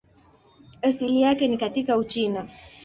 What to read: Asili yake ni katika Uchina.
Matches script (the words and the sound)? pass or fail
pass